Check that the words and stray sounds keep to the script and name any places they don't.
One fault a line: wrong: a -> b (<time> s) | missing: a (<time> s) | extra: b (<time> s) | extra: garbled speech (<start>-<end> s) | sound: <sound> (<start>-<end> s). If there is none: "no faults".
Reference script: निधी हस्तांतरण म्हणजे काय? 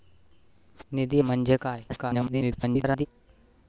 missing: हस्तांतरण (1.2 s)
extra: garbled speech (1.9-3.1 s)